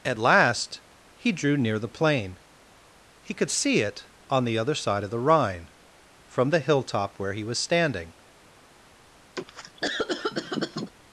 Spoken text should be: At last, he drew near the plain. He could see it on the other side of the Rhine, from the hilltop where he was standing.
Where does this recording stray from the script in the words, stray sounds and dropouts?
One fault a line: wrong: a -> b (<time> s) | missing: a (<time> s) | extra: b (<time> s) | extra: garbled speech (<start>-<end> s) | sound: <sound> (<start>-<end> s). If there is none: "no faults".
sound: cough (9.4-10.9 s)